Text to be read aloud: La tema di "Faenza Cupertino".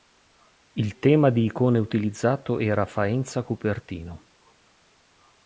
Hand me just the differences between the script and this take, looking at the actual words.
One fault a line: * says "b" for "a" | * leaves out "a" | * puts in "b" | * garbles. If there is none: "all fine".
* says "Il" for "La"
* puts in "icone utilizzato era"